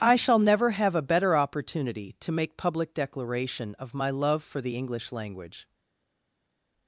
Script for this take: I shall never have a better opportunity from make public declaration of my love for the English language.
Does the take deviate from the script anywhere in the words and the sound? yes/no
yes